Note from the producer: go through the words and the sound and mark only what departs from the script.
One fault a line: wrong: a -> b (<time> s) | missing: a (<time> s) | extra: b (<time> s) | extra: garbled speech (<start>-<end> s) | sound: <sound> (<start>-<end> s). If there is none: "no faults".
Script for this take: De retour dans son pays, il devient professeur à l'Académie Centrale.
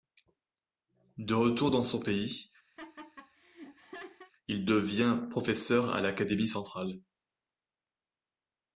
sound: laugh (2.8-4.3 s)